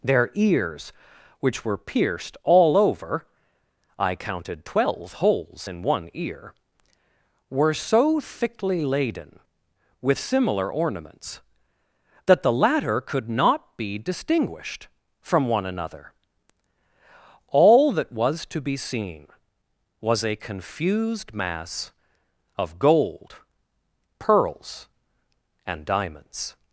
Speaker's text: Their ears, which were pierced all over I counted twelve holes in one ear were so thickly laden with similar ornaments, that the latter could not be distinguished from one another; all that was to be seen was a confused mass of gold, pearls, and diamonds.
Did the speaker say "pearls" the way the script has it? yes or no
yes